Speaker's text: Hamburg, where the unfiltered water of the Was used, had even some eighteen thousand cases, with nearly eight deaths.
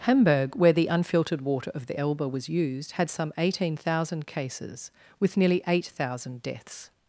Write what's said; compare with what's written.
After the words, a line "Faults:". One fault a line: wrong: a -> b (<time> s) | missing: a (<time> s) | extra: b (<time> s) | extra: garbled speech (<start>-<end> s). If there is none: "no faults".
Hamburg, where the unfiltered water of the Elbe was used, had some eighteen thousand cases, with nearly eight thousand deaths.
Faults:
extra: Elbe (2.0 s)
missing: even (3.1 s)
extra: thousand (5.9 s)